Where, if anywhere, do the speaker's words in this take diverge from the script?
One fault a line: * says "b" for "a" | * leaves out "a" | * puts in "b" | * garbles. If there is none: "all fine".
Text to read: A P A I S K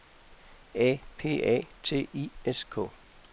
* puts in "T"